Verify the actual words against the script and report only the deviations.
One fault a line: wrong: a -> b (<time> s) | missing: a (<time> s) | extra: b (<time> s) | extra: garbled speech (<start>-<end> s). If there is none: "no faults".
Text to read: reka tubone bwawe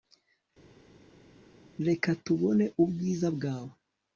extra: ubwiza (2.8 s)